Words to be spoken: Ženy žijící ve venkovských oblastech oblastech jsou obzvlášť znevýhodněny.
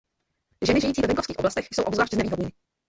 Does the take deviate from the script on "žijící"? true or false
false